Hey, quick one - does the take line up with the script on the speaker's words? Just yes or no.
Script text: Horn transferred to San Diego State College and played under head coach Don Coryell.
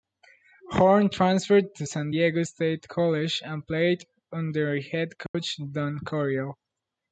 yes